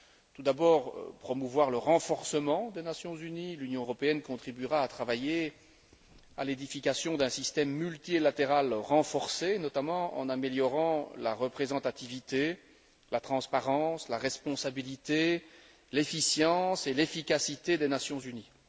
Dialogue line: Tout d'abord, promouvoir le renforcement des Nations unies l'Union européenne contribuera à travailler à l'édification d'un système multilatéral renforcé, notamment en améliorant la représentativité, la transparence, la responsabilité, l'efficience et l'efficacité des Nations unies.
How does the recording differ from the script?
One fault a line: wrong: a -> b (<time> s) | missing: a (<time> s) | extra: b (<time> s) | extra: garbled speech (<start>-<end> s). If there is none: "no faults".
no faults